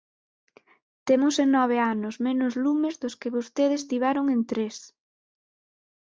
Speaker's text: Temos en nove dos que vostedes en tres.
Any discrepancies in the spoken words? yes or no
yes